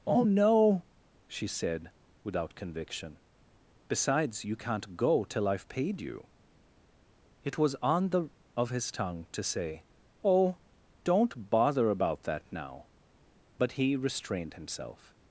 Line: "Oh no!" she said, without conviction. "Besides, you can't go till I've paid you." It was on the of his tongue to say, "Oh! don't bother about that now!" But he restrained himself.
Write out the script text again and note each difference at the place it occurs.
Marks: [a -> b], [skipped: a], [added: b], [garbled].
"Oh no!" she said, without conviction. "Besides, you can't go till I've paid you." It was on the of his tongue to say, "Oh! don't bother about that now!" But he restrained himself.